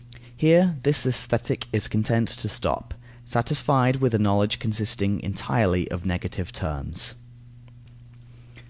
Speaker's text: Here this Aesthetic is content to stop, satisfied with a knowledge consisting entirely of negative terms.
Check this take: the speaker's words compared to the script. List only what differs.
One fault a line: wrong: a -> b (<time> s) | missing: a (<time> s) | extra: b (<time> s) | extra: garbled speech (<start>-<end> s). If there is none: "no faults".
no faults